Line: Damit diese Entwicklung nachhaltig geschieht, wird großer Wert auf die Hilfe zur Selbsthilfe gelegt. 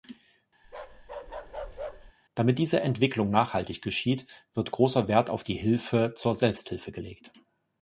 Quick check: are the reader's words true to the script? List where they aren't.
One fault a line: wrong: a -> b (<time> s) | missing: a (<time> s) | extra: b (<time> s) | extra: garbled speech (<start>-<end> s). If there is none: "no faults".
no faults